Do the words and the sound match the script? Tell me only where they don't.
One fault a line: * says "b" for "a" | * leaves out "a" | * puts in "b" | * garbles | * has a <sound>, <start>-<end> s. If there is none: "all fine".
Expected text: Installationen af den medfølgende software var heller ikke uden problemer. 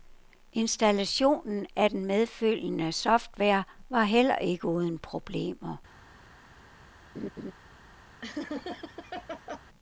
* has a laugh, 7.1-7.5 s
* has a laugh, 8.2-9.6 s